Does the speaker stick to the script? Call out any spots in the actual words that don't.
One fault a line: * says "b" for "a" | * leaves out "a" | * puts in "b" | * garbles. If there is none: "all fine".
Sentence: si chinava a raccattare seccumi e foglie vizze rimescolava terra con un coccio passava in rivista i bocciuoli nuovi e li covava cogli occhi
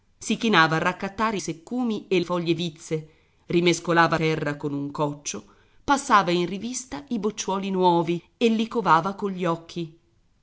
all fine